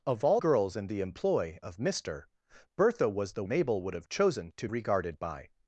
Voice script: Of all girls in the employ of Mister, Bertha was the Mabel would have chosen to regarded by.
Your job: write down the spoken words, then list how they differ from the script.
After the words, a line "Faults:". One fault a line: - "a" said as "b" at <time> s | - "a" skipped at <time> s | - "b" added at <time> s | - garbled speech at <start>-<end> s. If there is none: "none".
Of all girls in the employ of Mister, Bertha was the Mabel would have chosen to regarded by.
Faults:
none